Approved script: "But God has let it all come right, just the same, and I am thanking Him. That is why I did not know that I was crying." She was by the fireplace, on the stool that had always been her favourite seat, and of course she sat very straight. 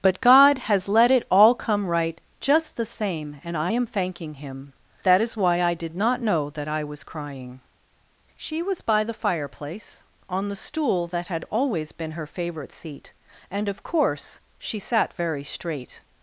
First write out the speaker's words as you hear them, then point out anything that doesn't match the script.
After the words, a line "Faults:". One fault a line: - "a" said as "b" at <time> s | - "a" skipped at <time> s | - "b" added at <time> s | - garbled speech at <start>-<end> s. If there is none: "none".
"But God has let it all come right, just the same, and I am thanking Him. That is why I did not know that I was crying." She was by the fireplace, on the stool that had always been her favourite seat, and of course she sat very straight.
Faults:
none